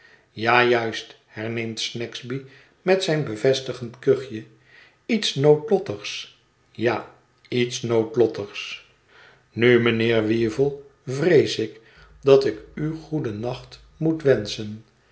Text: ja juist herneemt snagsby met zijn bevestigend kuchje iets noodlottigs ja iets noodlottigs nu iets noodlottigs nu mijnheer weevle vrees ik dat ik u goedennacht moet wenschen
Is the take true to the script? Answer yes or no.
no